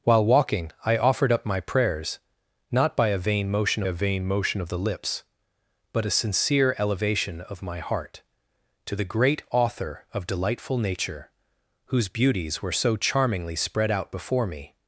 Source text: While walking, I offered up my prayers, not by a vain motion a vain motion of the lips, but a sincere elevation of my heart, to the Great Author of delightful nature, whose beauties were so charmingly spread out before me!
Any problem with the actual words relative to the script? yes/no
no